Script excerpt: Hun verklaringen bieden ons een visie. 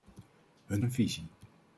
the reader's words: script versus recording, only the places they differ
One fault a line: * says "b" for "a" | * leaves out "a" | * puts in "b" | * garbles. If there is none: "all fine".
* leaves out "verklaringen bieden ons"